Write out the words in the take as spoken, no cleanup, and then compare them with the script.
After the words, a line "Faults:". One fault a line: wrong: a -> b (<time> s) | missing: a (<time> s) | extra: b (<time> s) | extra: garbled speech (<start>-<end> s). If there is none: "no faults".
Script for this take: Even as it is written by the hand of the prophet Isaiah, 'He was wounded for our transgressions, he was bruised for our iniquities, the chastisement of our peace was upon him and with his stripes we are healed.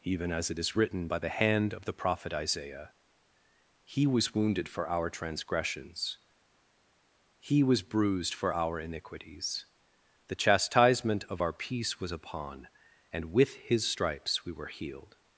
Even as it is written by the hand of the prophet Isaiah, 'He was wounded for our transgressions, he was bruised for our iniquities, the chastisement of our peace was upon and with his stripes we were healed.
Faults:
missing: him (12.7 s)
wrong: are -> were (14.5 s)